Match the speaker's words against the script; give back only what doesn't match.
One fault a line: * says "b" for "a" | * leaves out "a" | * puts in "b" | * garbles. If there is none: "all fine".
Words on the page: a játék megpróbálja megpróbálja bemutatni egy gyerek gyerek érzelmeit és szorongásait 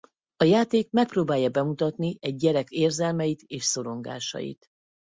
* leaves out "megpróbálja"
* leaves out "gyerek"